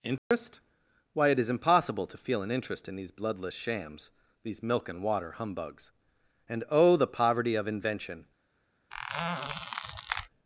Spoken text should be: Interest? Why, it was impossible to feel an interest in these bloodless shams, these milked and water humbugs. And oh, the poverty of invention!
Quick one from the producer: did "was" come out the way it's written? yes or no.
no